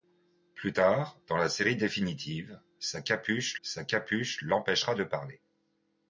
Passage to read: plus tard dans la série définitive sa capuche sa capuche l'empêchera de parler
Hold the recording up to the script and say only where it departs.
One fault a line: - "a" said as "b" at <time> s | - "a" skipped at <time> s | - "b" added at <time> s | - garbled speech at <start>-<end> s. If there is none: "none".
none